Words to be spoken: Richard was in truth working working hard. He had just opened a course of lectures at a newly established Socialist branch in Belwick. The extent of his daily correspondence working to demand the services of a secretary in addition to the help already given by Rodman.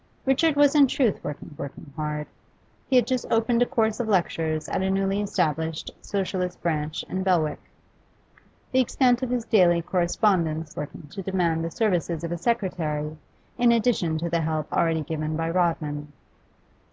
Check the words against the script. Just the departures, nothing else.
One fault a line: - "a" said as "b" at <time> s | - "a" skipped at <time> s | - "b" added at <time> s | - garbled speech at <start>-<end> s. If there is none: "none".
none